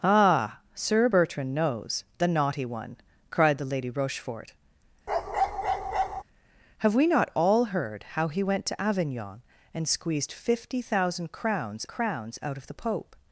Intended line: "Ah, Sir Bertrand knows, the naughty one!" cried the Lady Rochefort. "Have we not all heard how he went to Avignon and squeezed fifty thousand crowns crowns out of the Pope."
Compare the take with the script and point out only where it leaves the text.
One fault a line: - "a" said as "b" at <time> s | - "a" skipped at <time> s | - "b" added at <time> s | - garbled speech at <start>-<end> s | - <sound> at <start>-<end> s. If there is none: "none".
- bark at 5.1-6.2 s